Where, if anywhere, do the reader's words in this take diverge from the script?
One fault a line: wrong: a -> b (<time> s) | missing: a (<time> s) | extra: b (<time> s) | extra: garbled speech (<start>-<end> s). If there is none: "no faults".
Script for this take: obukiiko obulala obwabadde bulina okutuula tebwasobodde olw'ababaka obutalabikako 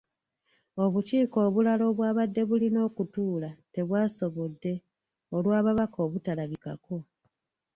no faults